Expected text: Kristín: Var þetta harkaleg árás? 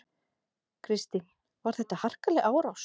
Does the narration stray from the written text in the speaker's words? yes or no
no